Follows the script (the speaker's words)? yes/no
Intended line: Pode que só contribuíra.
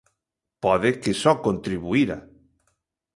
yes